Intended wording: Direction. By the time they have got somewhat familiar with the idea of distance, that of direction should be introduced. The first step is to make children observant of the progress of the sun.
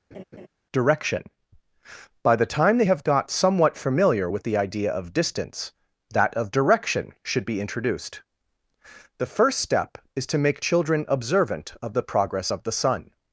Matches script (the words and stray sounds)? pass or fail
fail